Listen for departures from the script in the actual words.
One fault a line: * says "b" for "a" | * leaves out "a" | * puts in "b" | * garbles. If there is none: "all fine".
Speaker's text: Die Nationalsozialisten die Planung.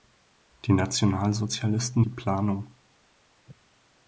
all fine